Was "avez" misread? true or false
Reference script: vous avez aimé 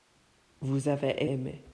false